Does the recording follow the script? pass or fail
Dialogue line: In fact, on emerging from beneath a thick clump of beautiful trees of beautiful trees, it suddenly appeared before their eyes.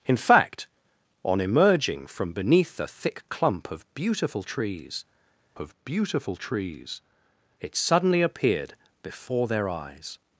pass